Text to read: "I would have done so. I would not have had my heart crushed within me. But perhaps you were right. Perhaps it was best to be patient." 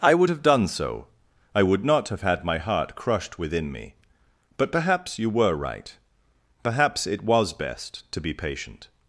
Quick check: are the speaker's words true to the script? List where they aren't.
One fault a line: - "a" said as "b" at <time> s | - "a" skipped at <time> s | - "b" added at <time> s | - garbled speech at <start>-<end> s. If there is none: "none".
none